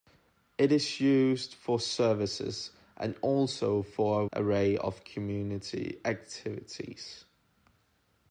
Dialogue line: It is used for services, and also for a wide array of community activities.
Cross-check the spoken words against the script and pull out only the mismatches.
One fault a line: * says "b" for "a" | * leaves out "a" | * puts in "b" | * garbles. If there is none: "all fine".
* leaves out "wide"